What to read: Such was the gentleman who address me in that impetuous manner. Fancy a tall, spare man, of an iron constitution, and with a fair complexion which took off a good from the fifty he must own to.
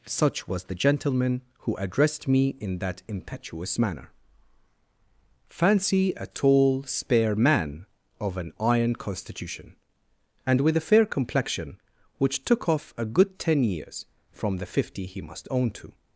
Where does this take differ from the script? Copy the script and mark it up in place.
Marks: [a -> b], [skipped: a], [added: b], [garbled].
Such was the gentleman who [address -> addressed] me in that impetuous manner. Fancy a tall, spare man, of an iron constitution, and with a fair complexion which took off a good [added: ten years] from the fifty he must own to.